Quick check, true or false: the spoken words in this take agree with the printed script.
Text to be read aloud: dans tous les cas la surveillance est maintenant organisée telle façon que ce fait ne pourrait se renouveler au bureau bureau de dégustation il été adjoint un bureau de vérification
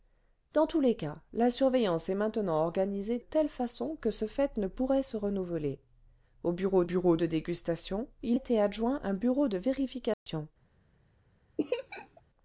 true